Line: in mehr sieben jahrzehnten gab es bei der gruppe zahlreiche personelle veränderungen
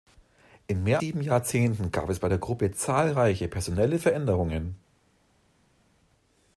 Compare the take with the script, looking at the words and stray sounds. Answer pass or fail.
pass